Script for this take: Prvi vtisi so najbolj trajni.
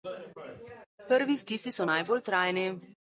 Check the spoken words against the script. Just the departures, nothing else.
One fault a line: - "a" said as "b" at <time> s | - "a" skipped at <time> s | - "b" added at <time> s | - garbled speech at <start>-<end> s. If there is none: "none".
none